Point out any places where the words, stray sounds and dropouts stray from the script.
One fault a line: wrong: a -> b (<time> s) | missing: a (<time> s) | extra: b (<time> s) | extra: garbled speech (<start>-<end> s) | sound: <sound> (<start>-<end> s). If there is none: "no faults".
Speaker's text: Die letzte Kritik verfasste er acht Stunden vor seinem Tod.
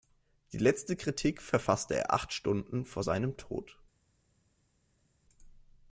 no faults